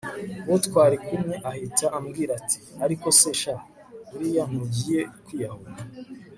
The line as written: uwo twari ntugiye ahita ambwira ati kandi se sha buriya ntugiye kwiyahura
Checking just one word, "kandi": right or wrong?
wrong